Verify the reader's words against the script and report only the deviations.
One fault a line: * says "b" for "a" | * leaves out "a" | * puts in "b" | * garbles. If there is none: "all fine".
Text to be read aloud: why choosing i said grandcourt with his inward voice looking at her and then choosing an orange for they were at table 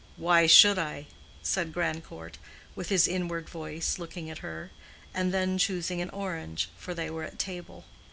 * says "should" for "choosing"